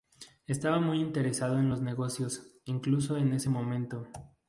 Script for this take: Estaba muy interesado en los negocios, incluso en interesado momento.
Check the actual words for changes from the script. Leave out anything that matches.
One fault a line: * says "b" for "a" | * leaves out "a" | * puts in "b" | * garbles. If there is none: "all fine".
* says "ese" for "interesado"